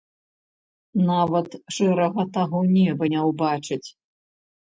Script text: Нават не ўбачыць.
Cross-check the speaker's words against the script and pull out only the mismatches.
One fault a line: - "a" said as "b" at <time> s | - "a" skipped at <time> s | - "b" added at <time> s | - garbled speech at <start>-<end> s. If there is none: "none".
- "шэрага таго неба" added at 1.8 s